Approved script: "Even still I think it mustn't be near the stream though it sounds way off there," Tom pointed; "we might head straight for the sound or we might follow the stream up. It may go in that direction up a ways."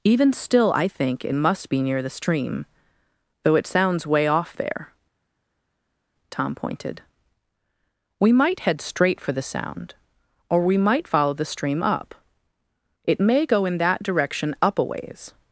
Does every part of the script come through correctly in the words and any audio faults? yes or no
no